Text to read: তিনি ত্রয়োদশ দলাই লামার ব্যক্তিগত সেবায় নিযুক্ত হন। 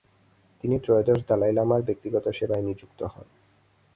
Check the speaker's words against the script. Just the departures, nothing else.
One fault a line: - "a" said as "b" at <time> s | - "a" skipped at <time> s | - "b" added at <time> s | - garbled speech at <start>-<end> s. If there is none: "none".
none